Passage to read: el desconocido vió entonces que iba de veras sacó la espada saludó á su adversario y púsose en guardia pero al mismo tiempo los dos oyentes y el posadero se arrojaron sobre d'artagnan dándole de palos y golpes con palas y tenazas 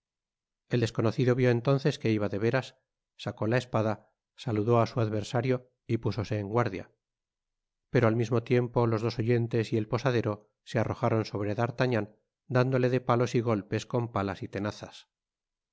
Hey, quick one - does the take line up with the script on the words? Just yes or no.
yes